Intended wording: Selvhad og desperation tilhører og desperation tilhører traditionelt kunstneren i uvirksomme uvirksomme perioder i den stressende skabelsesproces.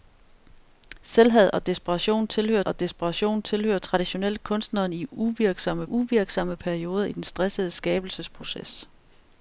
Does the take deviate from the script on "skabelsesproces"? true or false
false